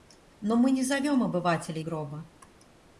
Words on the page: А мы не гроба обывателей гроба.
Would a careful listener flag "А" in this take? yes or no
yes